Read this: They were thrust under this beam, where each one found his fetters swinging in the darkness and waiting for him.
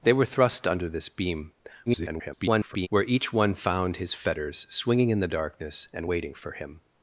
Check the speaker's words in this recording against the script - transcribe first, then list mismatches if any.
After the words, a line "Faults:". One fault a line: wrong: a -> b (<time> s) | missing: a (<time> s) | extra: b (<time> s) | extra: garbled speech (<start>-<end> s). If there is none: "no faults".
They were thrust under this beam, [garbled] where each one found his fetters swinging in the darkness and waiting for him.
Faults:
extra: garbled speech (1.9-2.9 s)